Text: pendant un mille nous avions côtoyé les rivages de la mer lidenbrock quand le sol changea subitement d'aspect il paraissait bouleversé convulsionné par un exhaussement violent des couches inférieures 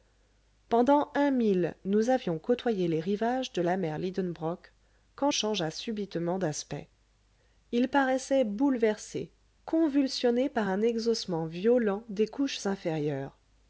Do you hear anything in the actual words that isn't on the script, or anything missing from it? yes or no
yes